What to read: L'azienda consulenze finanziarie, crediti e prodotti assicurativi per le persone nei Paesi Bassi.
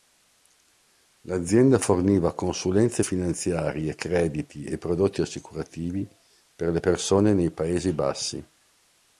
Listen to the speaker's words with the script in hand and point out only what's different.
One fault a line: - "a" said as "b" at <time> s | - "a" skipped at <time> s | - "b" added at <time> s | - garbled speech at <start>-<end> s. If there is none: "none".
- "forniva" added at 1.8 s